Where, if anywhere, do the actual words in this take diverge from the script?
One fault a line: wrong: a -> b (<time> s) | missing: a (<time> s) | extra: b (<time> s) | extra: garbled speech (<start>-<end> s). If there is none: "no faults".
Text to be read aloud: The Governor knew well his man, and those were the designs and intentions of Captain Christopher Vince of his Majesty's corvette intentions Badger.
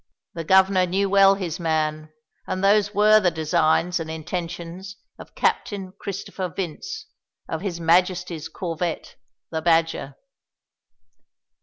wrong: intentions -> the (9.5 s)